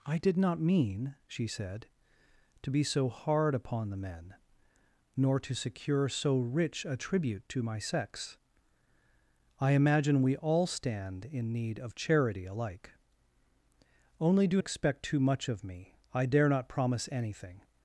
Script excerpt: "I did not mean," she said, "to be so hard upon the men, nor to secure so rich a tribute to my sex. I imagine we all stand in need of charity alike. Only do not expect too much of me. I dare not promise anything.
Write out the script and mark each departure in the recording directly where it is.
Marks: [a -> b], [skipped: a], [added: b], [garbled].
"I did not mean," she said, "to be so hard upon the men, nor to secure so rich a tribute to my sex. I imagine we all stand in need of charity alike. Only do [skipped: not] expect too much of me. I dare not promise anything.